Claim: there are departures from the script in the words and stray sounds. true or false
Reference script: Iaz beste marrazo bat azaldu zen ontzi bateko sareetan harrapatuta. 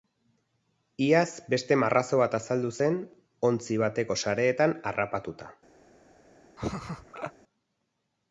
true